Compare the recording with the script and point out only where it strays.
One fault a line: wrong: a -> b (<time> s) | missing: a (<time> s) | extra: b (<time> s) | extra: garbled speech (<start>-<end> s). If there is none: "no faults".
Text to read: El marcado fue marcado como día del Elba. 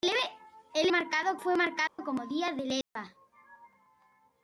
no faults